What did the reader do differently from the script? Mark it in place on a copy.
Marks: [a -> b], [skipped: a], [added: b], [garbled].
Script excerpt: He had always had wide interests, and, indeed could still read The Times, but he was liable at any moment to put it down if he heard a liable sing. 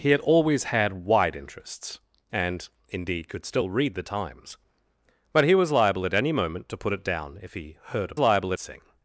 He had always had wide interests, and, indeed could still read The Times, but he was liable at any moment to put it down if he heard a liable sing.